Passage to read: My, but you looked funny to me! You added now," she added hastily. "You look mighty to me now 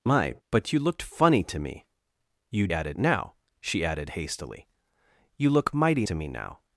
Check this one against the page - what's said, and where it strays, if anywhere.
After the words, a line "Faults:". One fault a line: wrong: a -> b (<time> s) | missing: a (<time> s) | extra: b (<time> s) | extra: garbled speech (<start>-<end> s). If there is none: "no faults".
My, but you looked funny to me! You added now," she added hastily. "You look mighty to me now
Faults:
no faults